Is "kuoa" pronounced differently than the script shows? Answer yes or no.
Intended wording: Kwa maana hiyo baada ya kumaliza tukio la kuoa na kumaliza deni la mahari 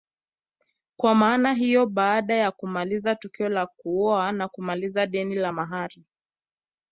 no